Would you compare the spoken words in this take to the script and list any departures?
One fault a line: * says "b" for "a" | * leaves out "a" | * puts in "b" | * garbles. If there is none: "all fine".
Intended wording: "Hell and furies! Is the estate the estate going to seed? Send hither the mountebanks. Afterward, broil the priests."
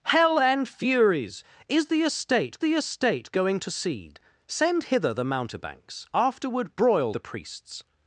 all fine